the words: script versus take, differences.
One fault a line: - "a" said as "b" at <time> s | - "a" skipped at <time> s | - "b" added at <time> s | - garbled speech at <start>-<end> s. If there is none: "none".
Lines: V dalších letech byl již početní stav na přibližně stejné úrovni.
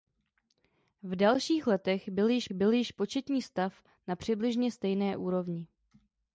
- "byl již" added at 2.5 s